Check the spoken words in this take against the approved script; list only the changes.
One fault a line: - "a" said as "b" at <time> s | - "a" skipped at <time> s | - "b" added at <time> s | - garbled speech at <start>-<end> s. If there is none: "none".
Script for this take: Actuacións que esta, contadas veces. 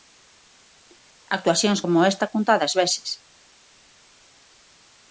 - "que" said as "como" at 1.8 s